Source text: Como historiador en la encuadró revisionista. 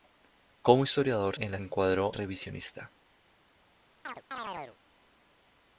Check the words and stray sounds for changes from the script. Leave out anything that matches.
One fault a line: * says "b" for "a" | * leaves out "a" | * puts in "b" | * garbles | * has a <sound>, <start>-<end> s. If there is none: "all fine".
* has a chirp, 4.0-4.8 s